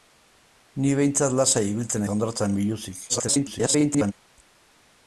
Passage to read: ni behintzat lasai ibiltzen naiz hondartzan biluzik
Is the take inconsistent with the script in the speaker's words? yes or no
yes